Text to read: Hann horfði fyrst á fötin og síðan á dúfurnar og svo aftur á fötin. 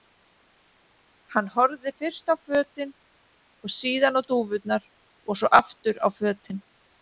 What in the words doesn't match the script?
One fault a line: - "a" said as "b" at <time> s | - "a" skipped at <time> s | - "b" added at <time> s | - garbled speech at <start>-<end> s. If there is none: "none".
none